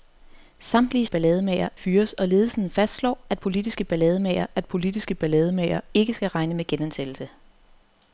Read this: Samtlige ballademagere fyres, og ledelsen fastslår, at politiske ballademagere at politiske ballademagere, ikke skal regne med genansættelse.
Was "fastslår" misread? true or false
false